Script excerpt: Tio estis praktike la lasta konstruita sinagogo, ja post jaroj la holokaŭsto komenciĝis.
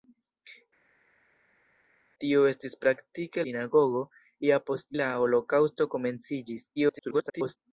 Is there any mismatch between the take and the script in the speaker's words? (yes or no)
yes